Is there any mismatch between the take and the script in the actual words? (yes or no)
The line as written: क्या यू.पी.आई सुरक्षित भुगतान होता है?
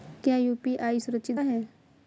yes